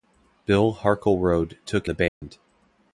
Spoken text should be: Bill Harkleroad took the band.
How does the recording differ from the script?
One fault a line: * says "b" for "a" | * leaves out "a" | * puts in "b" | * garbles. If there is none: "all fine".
all fine